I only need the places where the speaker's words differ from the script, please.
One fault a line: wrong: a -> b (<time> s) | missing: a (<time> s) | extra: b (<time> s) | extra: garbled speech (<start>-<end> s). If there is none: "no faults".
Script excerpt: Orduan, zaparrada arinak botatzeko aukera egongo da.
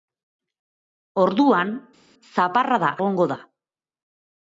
missing: arinak botatzeko aukera (2.9 s)